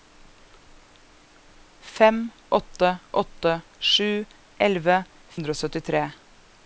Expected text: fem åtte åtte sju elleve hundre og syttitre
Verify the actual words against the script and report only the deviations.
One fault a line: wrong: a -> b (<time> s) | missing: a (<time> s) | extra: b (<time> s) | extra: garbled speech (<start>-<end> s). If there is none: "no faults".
no faults